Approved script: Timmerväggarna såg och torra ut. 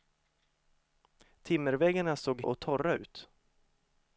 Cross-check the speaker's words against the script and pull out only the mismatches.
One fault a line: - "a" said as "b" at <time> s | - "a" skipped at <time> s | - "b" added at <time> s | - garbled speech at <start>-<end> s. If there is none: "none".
none